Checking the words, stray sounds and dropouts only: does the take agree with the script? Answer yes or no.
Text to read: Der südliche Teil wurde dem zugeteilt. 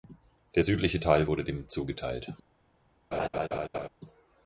no